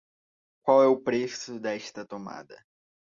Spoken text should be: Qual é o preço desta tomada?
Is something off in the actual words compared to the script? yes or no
no